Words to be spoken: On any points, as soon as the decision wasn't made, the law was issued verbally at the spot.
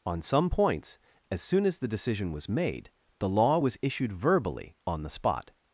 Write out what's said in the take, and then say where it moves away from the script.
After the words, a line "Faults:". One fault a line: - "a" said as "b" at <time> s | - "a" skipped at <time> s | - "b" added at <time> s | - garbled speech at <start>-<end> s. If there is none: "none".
On some points, as soon as the decision was made, the law was issued verbally on the spot.
Faults:
- "any" said as "some" at 0.2 s
- "wasn't" said as "was" at 2.3 s
- "at" said as "on" at 4.9 s